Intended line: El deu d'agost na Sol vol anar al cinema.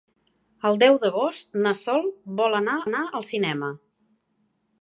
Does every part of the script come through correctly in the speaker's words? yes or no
no